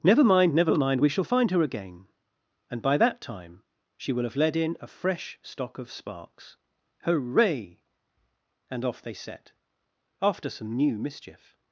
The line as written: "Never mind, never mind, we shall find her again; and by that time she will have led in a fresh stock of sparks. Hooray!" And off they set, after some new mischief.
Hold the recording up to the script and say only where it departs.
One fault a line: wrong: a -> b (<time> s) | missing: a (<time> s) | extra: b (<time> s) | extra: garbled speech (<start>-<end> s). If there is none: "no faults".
no faults